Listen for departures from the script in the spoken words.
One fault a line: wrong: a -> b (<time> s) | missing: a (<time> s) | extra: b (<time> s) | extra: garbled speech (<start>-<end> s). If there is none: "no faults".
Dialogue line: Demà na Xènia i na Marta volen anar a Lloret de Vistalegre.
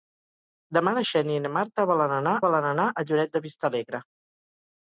extra: volen anar (2.5 s)